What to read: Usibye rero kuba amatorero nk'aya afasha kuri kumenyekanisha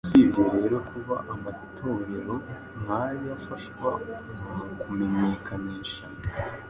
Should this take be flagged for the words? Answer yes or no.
yes